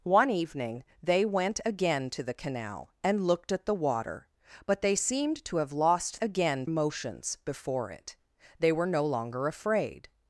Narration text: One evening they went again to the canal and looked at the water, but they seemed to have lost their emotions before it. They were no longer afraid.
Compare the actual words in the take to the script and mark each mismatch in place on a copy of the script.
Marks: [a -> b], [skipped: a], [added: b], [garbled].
One evening they went again to the canal and looked at the water, but they seemed to have lost [their -> again] emotions before it. They were no longer afraid.